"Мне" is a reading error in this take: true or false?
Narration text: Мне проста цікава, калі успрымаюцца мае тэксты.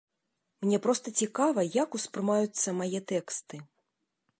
false